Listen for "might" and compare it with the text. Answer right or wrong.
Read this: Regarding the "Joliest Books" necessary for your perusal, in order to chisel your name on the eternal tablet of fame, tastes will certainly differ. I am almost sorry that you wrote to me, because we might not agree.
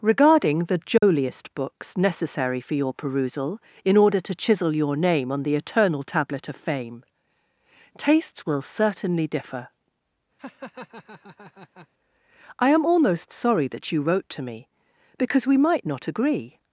right